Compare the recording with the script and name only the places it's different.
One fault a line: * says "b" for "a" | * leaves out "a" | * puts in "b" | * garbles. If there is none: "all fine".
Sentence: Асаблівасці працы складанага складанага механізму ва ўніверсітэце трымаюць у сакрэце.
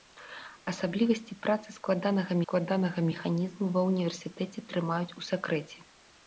all fine